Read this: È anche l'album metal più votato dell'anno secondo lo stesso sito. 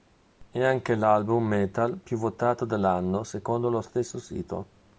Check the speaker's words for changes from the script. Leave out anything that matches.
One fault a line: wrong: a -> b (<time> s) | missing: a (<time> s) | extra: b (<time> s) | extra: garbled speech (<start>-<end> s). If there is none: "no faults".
no faults